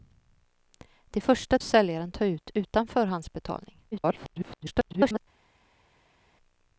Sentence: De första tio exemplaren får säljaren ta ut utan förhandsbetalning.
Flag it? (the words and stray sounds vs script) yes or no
yes